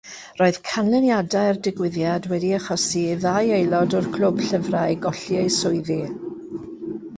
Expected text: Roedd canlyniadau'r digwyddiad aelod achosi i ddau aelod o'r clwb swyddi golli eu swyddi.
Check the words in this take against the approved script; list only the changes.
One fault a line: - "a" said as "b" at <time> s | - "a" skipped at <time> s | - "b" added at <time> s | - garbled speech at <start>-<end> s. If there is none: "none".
- "aelod" said as "wedi" at 2.3 s
- "swyddi" said as "llyfrau" at 4.5 s